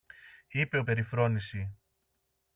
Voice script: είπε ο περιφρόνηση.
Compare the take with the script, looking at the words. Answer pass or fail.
pass